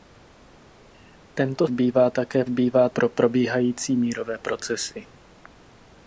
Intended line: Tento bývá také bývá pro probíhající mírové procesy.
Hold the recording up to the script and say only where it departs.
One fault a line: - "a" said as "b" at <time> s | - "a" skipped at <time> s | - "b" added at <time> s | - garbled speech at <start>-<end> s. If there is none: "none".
none